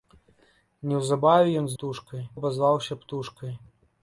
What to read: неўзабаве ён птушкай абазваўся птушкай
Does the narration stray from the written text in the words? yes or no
no